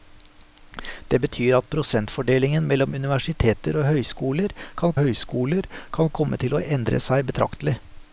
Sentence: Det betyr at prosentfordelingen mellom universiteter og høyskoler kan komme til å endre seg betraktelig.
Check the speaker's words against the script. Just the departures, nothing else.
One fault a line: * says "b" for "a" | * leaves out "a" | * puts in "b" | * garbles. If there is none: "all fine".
* puts in "høyskoler kan"